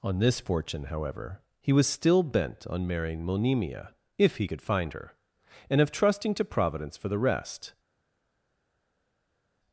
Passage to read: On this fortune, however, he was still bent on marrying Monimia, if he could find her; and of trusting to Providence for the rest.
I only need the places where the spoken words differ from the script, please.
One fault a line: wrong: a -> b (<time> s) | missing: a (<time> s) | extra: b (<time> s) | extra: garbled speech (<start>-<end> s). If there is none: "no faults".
no faults